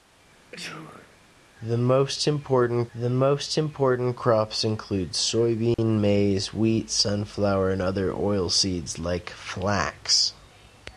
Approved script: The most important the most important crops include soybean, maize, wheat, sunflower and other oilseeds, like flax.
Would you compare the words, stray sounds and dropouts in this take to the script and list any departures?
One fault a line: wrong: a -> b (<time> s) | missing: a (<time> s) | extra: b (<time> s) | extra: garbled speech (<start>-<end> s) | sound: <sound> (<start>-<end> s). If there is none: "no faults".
sound: sneeze (0.5-1.2 s)
sound: dropout (5.7-5.8 s)